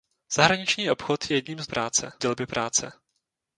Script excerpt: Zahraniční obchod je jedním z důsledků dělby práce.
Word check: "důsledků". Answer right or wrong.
wrong